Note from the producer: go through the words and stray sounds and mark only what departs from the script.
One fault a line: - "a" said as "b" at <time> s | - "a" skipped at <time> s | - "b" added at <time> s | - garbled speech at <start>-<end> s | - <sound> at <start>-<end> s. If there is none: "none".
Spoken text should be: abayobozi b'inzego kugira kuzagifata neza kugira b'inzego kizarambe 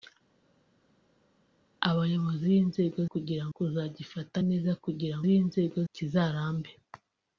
none